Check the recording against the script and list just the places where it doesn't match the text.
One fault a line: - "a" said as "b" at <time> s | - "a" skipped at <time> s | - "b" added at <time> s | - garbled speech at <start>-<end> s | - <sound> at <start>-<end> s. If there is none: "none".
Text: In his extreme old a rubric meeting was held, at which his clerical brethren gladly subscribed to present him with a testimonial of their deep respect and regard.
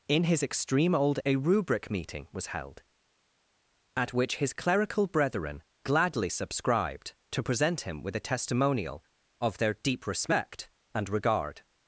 none